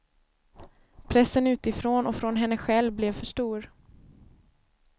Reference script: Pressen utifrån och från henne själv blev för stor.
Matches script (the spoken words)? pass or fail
pass